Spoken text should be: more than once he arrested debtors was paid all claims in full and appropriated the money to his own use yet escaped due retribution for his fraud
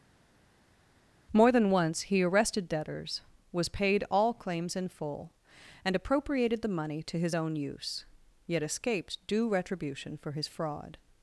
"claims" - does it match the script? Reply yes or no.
yes